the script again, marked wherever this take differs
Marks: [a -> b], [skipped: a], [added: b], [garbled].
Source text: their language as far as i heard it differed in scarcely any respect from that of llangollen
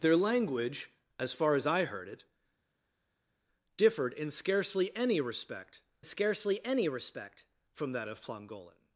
their language as far as i heard it differed in scarcely any respect [added: scarcely any respect] from that of llangollen